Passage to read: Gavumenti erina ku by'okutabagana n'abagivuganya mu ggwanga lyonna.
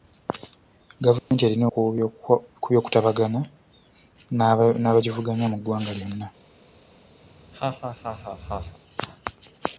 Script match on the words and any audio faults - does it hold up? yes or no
no